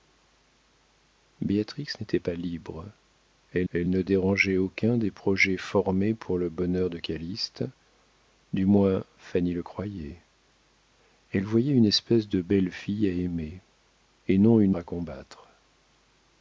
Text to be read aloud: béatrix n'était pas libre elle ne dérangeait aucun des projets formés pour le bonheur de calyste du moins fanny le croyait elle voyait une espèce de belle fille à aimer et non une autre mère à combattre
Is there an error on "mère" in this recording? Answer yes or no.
yes